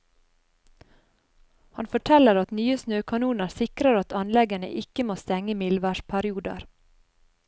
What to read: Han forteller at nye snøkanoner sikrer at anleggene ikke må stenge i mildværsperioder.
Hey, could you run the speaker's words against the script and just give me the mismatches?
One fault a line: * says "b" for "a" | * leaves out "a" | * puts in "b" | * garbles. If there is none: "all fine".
all fine